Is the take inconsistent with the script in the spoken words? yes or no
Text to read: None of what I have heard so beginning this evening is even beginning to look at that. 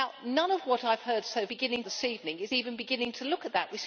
no